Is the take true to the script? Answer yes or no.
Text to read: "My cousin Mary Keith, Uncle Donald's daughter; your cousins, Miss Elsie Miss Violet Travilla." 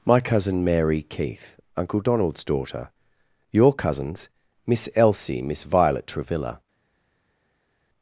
yes